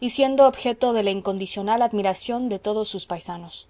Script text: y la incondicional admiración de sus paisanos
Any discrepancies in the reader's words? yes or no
yes